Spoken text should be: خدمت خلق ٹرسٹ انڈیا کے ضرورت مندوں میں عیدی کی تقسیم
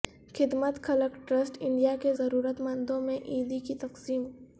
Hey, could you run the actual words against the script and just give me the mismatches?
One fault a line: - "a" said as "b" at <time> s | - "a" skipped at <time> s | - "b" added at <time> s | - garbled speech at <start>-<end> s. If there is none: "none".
none